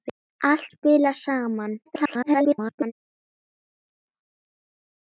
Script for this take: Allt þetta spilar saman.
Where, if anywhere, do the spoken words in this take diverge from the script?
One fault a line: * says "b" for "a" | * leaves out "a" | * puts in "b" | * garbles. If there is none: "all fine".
* leaves out "þetta"
* garbles